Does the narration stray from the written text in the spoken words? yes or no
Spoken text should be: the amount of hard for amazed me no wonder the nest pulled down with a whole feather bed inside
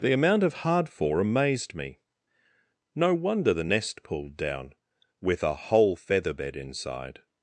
no